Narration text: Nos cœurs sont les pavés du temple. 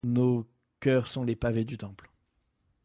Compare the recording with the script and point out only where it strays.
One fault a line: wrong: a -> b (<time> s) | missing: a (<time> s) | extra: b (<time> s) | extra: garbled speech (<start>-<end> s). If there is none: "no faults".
no faults